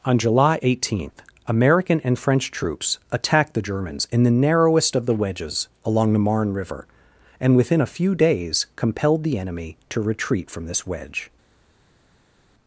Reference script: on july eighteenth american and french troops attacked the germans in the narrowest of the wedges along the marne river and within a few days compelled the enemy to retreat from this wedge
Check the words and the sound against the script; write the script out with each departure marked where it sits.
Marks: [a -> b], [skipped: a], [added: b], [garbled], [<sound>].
on july eighteenth american and french troops attacked the germans in the narrowest of the wedges along the marne river and within a few days compelled the enemy to retreat from this wedge